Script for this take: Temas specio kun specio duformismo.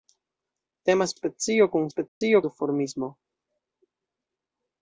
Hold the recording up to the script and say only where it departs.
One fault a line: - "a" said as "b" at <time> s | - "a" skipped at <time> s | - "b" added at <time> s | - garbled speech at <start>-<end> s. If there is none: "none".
none